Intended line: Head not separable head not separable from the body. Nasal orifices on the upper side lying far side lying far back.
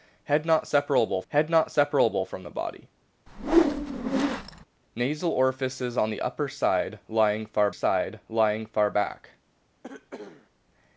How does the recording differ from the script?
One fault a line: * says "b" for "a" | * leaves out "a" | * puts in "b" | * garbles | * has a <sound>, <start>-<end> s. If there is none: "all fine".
* has a whoosh, 3.3-4.7 s
* has a cough, 9.8-10.5 s